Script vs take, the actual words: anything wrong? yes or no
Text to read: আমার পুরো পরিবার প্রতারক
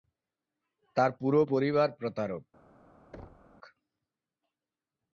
yes